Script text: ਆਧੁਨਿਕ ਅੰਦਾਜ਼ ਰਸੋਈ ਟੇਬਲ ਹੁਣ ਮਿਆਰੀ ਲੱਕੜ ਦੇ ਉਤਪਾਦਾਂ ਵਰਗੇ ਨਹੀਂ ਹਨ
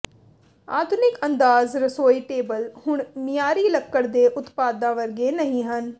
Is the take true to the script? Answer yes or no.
yes